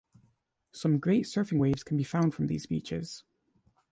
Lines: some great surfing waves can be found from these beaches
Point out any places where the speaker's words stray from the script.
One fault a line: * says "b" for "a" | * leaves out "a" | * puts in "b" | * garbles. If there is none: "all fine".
all fine